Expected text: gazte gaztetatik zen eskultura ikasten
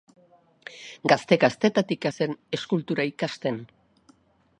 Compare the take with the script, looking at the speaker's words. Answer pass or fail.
pass